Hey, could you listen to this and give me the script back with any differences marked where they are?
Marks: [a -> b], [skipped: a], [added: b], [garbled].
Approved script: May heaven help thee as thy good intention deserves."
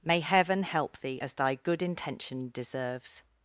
May heaven help thee as thy good intention deserves."